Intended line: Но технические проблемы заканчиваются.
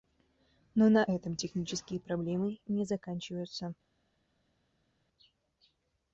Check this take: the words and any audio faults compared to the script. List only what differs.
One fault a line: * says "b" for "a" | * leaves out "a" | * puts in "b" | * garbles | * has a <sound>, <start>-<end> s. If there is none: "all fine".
* puts in "на этом"
* puts in "не"